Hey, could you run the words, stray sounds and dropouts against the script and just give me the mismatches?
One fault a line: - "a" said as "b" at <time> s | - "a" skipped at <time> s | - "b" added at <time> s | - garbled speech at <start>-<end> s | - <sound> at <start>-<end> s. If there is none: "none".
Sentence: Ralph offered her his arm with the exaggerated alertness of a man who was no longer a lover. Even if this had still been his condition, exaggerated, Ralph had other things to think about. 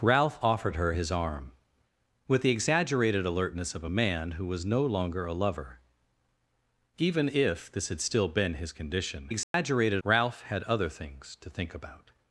- dropout at 9.4-9.5 s